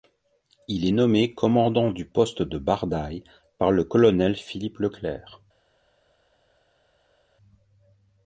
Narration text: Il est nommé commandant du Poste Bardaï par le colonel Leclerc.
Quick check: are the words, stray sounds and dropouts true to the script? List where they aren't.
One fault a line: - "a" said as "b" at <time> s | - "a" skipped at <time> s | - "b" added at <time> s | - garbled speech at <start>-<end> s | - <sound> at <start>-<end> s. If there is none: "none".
- "de" added at 2.4 s
- "Philippe" added at 4.4 s